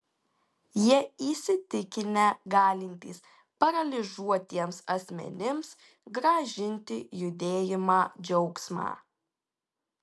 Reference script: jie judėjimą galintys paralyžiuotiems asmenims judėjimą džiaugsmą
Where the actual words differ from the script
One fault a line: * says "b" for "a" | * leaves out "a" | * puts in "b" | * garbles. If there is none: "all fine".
* says "įsitikinę" for "judėjimą"
* puts in "grąžinti"